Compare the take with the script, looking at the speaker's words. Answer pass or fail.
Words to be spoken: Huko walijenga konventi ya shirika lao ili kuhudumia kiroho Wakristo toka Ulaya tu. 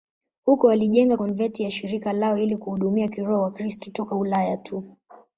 pass